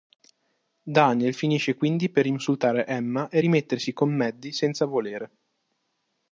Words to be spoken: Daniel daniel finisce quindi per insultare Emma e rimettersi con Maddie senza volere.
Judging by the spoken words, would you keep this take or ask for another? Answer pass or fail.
fail